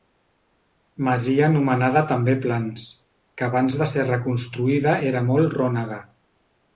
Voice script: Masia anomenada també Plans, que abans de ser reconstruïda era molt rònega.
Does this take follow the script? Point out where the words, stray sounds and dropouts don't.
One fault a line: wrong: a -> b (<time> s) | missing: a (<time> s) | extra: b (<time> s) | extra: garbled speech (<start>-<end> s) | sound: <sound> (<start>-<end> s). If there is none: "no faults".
no faults